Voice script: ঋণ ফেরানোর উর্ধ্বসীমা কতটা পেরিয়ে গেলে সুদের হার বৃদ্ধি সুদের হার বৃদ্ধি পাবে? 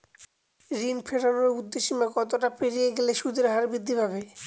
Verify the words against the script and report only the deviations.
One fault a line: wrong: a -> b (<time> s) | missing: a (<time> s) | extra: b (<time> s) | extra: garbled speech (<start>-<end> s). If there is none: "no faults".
missing: সুদের হার বৃদ্ধি (3.9 s)